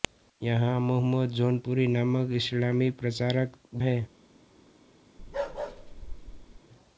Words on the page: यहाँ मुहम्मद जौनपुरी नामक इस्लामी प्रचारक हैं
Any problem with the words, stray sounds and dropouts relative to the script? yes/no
yes